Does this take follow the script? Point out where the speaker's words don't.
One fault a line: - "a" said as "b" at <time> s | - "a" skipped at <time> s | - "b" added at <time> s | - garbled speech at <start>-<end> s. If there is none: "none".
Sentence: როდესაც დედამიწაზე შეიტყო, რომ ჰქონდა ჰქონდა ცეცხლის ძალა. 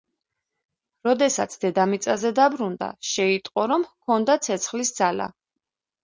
- "დაბრუნდა" added at 2.4 s
- "ჰქონდა" skipped at 4.4 s